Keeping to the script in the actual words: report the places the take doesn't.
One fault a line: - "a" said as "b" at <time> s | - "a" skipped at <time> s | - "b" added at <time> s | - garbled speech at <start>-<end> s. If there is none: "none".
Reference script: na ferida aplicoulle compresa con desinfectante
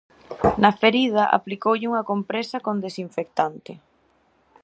- "unha" added at 1.9 s